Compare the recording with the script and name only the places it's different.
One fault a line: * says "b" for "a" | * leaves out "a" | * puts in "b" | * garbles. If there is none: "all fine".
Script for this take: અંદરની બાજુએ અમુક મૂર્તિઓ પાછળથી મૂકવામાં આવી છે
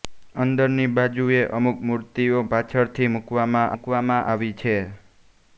* puts in "મૂકવામાં"